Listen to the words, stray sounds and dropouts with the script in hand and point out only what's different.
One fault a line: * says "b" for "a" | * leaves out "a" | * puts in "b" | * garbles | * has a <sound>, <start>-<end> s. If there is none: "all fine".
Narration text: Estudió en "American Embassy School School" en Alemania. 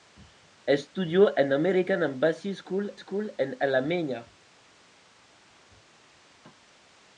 all fine